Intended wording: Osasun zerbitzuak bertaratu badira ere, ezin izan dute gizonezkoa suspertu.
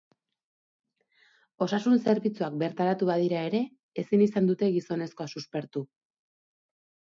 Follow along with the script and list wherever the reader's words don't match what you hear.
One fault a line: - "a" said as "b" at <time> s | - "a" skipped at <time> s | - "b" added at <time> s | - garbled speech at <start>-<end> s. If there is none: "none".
none